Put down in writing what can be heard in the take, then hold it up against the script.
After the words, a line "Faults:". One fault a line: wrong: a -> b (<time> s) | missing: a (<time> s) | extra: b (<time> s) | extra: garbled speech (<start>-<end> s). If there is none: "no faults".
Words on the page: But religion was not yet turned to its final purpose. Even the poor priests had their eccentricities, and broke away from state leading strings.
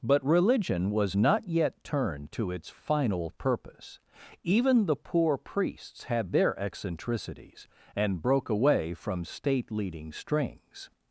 But religion was not yet turned to its final purpose. Even the poor priests had their eccentricities, and broke away from state leading strings.
Faults:
no faults